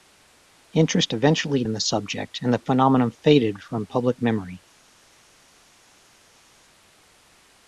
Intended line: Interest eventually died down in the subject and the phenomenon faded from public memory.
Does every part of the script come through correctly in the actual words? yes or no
no